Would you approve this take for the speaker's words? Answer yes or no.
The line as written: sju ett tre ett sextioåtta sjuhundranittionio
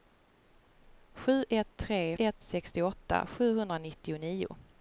yes